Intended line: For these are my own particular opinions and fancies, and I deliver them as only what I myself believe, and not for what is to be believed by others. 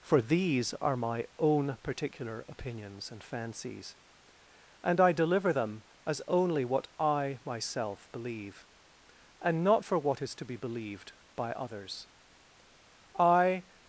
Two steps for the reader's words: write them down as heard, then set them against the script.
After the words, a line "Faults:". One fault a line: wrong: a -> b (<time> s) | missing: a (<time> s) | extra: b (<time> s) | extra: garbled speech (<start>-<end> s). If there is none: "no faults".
For these are my own particular opinions and fancies, and I deliver them as only what I myself believe, and not for what is to be believed by others. I
Faults:
extra: I (13.2 s)